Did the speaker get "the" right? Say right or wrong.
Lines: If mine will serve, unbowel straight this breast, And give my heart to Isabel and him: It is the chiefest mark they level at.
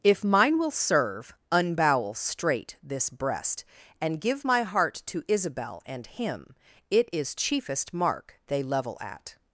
wrong